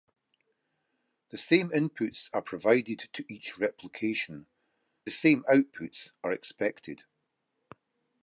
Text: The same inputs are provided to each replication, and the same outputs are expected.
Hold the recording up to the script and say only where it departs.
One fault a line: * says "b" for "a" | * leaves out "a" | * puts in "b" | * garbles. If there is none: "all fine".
* leaves out "and"